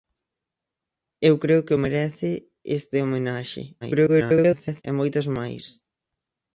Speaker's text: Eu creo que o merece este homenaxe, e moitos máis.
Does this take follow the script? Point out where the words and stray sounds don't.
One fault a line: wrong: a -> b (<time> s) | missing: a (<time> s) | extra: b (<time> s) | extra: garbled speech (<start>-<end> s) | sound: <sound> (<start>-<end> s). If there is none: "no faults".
extra: garbled speech (3.8-4.8 s)